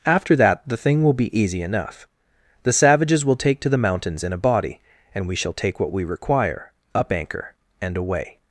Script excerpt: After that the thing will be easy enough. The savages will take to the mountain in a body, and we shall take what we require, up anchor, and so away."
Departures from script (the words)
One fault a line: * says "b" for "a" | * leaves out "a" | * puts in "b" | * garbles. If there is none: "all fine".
* says "mountains" for "mountain"
* leaves out "so"